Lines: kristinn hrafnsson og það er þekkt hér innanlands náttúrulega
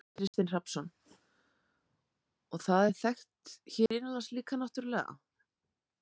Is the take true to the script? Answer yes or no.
no